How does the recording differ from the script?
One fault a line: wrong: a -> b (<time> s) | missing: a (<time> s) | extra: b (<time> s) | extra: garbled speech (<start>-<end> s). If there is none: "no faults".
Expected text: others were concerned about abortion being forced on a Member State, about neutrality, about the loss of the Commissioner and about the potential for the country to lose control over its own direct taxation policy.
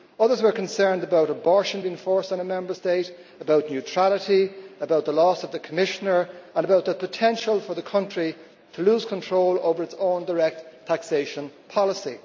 no faults